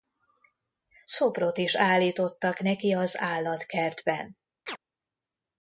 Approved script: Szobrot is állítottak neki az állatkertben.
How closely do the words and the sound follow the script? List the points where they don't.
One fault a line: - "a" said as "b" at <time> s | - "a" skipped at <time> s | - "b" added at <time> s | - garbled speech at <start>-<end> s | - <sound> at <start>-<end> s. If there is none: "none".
- chirp at 4.7-4.8 s